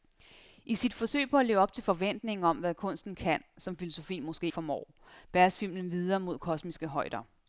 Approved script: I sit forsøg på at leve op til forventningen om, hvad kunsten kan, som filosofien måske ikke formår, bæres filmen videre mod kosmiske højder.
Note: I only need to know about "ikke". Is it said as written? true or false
false